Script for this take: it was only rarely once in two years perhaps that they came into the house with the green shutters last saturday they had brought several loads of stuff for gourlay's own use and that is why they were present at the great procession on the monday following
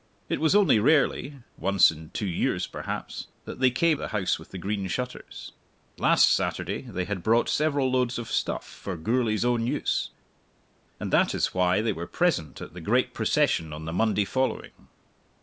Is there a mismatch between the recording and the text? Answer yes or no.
yes